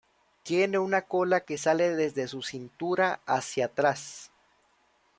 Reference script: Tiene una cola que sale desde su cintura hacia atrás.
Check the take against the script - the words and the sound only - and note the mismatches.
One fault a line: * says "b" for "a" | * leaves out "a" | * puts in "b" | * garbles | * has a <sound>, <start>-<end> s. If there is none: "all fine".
all fine